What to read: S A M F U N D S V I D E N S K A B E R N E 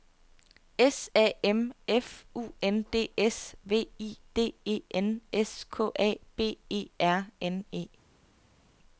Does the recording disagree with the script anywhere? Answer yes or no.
no